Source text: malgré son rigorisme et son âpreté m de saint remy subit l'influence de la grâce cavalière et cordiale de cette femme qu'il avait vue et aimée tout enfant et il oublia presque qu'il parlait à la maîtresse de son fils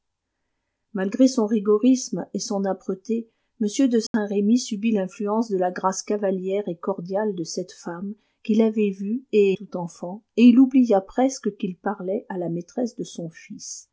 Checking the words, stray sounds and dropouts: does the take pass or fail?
fail